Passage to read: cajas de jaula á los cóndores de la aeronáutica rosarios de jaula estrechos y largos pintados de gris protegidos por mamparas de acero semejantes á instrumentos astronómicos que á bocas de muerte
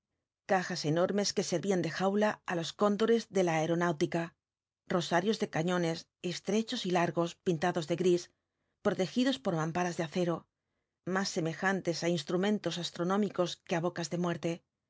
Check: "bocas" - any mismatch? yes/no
no